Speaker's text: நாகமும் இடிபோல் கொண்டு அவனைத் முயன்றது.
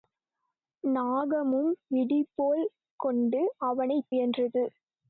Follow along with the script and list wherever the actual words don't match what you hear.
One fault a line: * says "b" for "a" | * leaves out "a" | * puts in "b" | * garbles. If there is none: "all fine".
all fine